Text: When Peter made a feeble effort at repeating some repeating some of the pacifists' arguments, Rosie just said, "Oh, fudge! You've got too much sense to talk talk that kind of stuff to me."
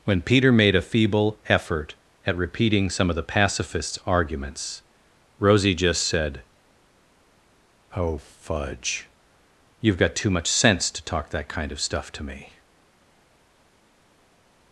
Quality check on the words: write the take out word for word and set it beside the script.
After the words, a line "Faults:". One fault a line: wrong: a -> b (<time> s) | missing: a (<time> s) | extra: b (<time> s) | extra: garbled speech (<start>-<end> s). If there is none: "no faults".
When Peter made a feeble effort at repeating some of the pacifists' arguments, Rosie just said, "Oh, fudge! You've got too much sense to talk that kind of stuff to me."
Faults:
missing: repeating some (3.1 s)
missing: talk (11.3 s)